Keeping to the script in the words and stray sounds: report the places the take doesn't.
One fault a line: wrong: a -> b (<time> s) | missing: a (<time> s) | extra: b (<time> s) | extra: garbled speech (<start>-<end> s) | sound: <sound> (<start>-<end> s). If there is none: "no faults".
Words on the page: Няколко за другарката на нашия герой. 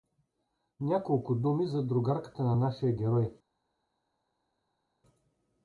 extra: думи (1.4 s)